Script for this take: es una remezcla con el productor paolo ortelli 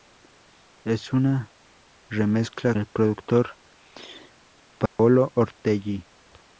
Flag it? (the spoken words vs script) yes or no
yes